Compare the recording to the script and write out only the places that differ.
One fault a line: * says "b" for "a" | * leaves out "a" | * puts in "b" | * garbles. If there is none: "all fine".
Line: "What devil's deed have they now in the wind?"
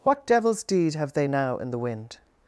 all fine